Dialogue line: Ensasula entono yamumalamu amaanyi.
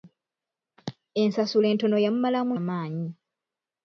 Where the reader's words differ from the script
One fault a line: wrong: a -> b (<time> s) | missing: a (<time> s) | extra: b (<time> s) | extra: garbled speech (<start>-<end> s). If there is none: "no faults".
no faults